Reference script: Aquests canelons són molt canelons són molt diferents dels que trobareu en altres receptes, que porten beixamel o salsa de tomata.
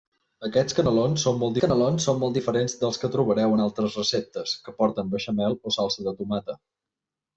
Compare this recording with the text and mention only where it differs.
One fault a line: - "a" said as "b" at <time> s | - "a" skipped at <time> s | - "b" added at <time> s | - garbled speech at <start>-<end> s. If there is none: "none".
none